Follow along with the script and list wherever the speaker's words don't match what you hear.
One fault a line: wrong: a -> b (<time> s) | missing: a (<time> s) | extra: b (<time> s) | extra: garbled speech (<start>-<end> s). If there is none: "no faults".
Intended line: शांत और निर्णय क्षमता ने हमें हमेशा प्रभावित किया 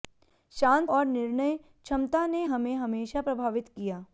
no faults